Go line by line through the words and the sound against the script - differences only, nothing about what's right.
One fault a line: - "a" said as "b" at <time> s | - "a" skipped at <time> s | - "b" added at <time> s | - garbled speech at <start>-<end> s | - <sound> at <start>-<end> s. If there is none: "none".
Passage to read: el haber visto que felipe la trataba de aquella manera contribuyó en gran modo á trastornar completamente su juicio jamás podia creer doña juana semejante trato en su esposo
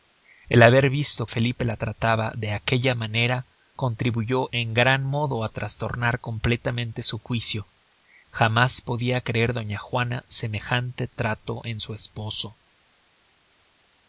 - "que" skipped at 1.3 s